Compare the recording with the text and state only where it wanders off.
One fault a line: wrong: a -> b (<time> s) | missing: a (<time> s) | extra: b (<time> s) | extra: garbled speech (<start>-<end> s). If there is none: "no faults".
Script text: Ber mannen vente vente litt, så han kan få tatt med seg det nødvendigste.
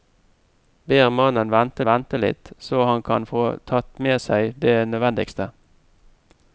no faults